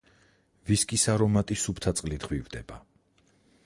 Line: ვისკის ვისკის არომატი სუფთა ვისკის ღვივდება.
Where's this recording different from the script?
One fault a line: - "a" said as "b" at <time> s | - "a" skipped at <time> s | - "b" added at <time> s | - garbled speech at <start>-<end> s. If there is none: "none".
- "ვისკის" skipped at 1.1 s
- "ვისკის" said as "წყლით" at 2.0 s